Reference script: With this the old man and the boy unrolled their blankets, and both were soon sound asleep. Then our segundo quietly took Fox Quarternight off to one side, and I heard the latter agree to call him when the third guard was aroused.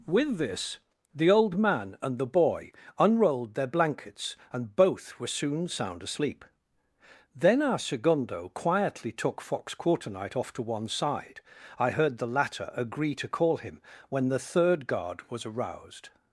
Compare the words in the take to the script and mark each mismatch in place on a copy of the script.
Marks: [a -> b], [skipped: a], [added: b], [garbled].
With this the old man and the boy unrolled their blankets, and both were soon sound asleep. Then our segundo quietly took Fox Quarternight off to one side, [skipped: and] I heard the latter agree to call him when the third guard was aroused.